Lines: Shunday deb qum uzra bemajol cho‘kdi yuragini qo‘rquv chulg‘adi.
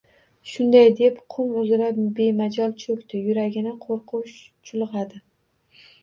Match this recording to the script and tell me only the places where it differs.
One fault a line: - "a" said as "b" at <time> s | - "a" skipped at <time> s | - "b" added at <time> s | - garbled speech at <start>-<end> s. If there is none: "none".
none